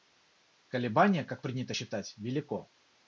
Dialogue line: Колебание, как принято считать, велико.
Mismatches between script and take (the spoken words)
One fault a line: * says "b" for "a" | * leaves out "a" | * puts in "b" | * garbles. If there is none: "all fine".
all fine